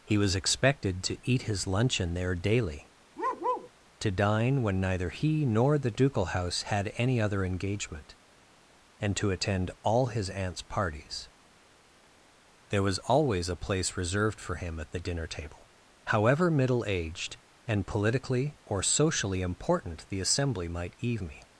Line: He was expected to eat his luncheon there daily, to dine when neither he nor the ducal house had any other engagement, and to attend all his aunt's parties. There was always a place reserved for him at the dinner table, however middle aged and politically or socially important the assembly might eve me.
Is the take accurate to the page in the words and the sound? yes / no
no